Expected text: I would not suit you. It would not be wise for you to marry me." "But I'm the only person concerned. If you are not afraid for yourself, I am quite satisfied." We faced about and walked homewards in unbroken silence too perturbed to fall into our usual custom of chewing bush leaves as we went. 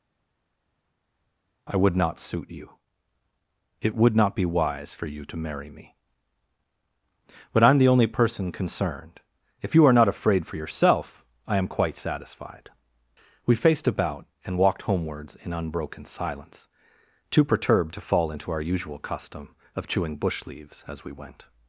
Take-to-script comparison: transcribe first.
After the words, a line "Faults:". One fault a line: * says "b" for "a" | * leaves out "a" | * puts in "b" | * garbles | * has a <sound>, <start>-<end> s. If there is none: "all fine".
I would not suit you. It would not be wise for you to marry me." "But I'm the only person concerned. If you are not afraid for yourself, I am quite satisfied." We faced about and walked homewards in unbroken silence too perturbed to fall into our usual custom of chewing bush leaves as we went.
Faults:
all fine